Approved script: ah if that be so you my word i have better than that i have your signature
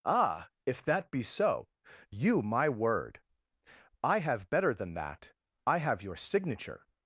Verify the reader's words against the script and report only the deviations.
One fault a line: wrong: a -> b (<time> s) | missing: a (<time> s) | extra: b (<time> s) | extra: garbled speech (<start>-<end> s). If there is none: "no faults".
no faults